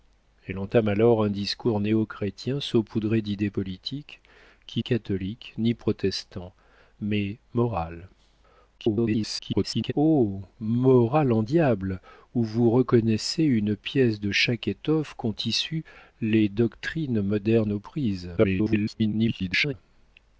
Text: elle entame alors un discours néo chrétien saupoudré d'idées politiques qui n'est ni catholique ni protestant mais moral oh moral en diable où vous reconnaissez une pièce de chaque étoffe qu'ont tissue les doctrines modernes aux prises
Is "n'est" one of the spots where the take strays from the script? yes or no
yes